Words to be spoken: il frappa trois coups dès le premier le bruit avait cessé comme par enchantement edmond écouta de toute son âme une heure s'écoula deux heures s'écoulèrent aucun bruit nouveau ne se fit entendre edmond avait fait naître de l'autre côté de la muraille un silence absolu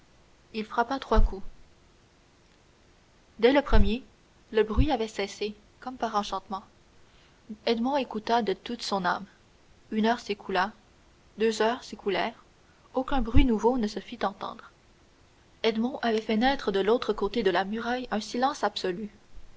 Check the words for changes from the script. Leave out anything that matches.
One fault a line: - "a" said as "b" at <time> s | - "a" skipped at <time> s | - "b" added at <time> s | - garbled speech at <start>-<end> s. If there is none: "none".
none